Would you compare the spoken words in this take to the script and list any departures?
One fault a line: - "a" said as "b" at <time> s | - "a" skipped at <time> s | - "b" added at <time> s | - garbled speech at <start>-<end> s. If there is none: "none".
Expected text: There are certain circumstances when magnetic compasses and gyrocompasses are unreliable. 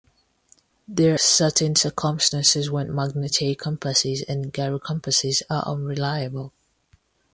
- "are" skipped at 1.2 s